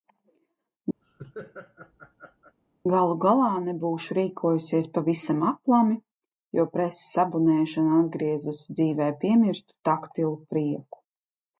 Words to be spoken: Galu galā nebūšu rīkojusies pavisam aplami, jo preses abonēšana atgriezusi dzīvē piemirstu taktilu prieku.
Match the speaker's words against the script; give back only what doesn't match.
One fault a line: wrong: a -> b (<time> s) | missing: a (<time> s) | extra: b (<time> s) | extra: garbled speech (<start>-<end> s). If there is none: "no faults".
no faults